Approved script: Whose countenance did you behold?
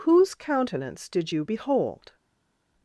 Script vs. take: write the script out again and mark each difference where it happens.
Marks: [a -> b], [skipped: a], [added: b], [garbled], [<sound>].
Whose countenance did you behold?